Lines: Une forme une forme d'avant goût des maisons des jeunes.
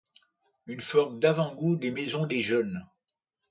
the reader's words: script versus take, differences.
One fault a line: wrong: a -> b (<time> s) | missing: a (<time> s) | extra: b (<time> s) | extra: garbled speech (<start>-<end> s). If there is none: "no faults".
missing: une forme (1.2 s)